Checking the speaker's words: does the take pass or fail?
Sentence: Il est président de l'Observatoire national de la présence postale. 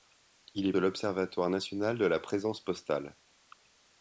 fail